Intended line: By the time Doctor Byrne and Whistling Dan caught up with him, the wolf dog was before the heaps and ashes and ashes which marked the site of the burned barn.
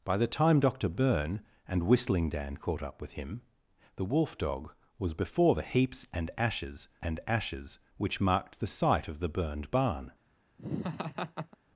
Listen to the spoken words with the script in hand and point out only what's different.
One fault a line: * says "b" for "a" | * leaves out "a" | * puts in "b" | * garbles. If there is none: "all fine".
all fine